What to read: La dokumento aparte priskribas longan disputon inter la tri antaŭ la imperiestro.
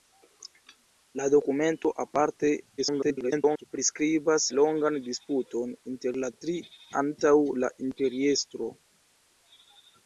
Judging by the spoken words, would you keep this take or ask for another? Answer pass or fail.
fail